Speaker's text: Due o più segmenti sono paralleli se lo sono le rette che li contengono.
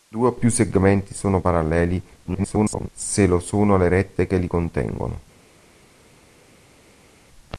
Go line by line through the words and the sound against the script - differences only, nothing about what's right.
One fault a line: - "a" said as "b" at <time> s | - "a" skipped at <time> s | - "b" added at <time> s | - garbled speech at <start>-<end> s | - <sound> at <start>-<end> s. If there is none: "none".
- garbled speech at 2.2-2.9 s